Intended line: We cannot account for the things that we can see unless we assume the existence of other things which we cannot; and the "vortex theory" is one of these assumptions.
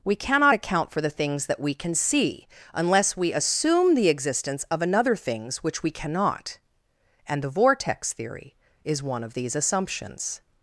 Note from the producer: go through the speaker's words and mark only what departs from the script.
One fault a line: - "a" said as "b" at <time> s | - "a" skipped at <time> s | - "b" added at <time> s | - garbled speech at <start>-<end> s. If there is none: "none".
- "other" said as "another" at 4.8 s